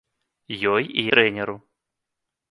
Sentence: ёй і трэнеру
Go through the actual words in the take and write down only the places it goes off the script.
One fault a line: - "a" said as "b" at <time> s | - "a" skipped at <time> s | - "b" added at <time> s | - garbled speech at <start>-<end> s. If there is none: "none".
none